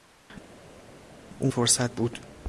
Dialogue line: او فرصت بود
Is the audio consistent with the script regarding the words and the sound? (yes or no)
yes